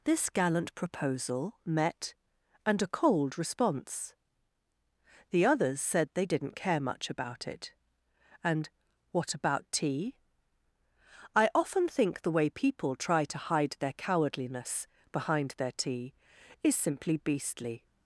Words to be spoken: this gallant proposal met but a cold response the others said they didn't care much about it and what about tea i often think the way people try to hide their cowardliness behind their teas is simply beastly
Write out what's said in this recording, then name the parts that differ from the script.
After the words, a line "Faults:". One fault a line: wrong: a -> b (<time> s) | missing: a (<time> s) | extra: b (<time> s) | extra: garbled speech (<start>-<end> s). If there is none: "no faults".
this gallant proposal met and a cold response the others said they didn't care much about it and what about tea i often think the way people try to hide their cowardliness behind their tea is simply beastly
Faults:
wrong: but -> and (2.6 s)
wrong: teas -> tea (15.7 s)